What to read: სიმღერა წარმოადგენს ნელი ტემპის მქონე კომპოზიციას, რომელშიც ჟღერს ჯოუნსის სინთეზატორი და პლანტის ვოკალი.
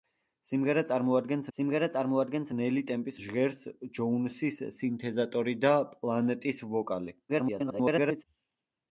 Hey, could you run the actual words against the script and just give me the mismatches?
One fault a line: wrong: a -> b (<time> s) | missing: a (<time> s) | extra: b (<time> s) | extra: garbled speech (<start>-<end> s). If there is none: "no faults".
extra: სიმღერა წარმოადგენს (1.6 s)
missing: მქონე კომპოზიციას რომელშიც (3.2 s)
extra: garbled speech (7.3-8.2 s)